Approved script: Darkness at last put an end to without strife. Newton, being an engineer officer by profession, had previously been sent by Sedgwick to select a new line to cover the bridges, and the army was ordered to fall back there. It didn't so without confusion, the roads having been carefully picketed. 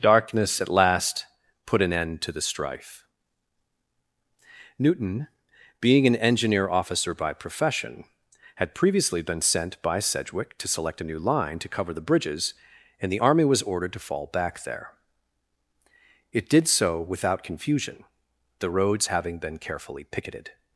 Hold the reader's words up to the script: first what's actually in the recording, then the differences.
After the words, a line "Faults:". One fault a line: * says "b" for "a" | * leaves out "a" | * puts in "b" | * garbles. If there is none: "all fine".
Darkness at last put an end to the strife. Newton, being an engineer officer by profession, had previously been sent by Sedgwick to select a new line to cover the bridges, and the army was ordered to fall back there. It did so without confusion, the roads having been carefully picketed.
Faults:
* says "the" for "without"
* says "did" for "didn't"